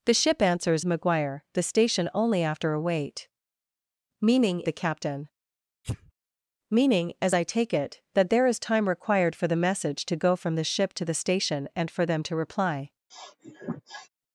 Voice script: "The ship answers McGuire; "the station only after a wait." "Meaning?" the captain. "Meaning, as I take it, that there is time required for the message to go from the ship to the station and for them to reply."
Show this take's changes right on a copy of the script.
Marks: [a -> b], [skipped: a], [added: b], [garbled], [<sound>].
"The ship answers McGuire; "the station only after a wait." "Meaning?" the captain. [sneeze] "Meaning, as I take it, that there is time required for the message to go from the ship to the station and for them to reply." [sniff]